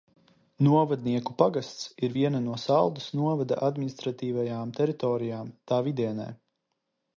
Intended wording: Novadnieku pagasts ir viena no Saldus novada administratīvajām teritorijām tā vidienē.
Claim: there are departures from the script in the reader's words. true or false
false